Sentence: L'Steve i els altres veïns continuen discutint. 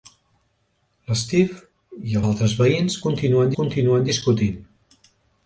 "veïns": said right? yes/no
yes